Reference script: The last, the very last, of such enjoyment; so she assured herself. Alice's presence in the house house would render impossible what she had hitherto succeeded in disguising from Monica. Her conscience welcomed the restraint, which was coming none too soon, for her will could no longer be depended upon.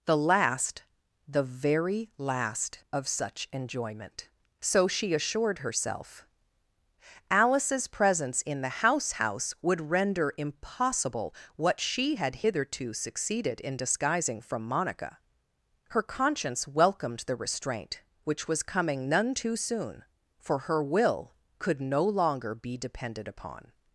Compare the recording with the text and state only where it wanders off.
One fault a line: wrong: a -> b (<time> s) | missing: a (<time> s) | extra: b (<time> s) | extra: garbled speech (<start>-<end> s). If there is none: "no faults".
no faults